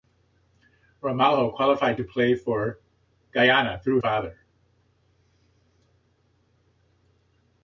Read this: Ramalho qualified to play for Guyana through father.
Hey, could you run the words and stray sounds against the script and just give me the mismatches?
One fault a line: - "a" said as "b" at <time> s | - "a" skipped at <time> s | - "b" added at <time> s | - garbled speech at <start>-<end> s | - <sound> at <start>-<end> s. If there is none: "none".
none